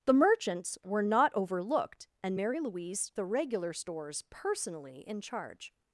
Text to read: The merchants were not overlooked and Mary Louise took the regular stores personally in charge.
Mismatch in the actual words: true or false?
true